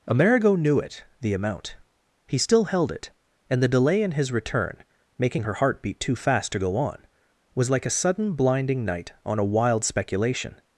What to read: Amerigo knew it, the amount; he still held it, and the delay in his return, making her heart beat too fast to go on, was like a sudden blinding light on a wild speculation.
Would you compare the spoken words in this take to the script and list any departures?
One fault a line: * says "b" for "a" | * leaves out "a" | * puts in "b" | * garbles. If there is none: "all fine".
* says "night" for "light"